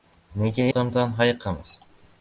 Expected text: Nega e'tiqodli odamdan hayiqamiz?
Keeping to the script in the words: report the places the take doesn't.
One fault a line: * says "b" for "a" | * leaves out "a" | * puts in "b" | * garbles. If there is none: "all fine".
* leaves out "e'tiqodli"